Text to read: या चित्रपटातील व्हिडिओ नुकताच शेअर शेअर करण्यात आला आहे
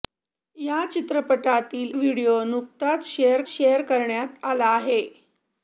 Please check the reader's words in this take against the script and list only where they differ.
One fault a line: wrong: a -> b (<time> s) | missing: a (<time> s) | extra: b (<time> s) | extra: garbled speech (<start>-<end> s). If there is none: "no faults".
no faults